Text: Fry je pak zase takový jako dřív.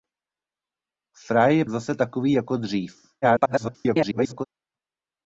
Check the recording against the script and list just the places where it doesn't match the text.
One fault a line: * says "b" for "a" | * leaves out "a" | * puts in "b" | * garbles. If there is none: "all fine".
* leaves out "pak"
* garbles